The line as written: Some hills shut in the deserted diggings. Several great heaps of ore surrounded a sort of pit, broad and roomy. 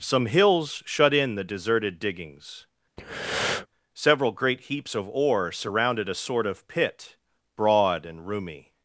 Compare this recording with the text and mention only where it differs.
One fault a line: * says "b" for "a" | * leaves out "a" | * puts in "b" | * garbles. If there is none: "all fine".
all fine